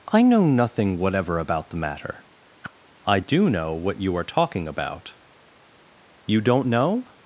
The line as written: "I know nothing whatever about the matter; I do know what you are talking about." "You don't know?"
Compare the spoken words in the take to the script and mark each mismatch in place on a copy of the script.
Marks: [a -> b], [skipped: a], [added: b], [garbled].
"I know nothing whatever about the matter; I do know what you are talking about." "You don't know?"